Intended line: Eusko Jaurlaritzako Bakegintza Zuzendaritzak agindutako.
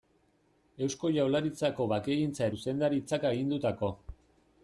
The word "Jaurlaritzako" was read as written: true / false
true